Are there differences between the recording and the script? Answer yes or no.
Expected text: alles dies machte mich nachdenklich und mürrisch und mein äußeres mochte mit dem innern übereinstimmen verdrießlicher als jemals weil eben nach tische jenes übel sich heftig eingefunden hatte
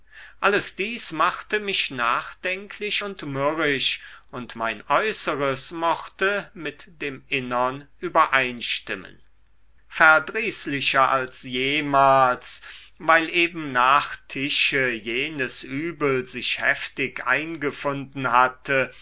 no